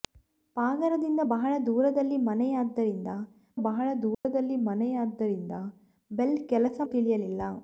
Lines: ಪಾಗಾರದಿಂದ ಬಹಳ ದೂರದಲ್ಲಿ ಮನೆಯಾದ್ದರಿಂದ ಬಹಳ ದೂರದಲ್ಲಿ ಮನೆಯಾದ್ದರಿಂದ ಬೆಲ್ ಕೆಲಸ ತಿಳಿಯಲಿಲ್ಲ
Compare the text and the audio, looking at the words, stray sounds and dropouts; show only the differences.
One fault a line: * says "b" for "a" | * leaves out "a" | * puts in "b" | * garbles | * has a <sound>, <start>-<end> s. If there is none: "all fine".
* has a dropout, 4.1-4.2 s